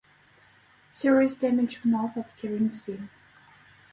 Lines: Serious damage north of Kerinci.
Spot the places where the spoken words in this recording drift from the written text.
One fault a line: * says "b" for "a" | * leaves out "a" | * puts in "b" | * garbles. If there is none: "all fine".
all fine